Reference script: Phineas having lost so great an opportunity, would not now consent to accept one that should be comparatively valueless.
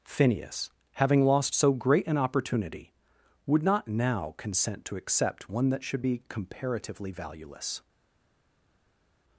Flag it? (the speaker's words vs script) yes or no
no